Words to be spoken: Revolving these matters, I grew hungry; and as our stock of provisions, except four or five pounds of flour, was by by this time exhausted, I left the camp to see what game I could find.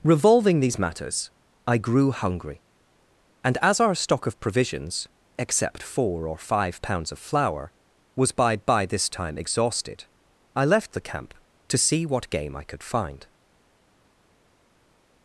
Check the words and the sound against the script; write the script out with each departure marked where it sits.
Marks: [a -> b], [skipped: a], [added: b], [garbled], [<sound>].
Revolving these matters, I grew hungry; and as our stock of provisions, except four or five pounds of flour, was by by this time exhausted, I left the camp to see what game I could find.